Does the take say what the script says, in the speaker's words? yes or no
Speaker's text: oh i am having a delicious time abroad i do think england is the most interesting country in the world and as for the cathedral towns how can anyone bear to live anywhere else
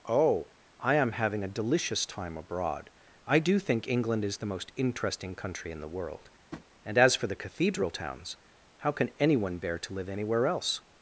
yes